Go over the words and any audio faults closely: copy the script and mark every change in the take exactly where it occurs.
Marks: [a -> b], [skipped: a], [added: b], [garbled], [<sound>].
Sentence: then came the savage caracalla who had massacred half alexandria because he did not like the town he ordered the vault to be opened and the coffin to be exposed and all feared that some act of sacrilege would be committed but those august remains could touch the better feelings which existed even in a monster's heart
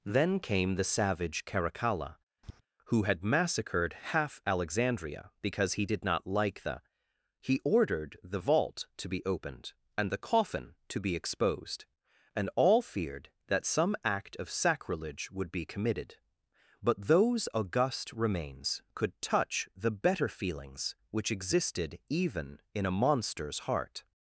then came the savage caracalla [tap] who had massacred half alexandria because he did not like the [skipped: town] he ordered the vault to be opened and the coffin to be exposed and all feared that some act of sacrilege would be committed but those august remains could touch the better feelings which existed even in a monster's heart